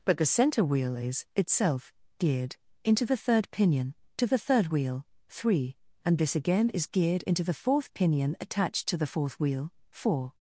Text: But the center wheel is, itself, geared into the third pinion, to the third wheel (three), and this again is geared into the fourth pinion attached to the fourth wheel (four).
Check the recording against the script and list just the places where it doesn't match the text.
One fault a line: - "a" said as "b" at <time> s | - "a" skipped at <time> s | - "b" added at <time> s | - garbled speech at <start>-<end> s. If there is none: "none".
none